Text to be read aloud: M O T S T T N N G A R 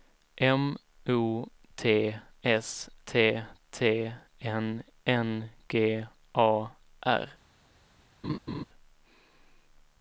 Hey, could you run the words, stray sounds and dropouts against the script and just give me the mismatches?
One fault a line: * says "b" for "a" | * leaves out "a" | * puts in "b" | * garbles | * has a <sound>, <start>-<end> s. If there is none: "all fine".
* has a laugh, 8.2-8.6 s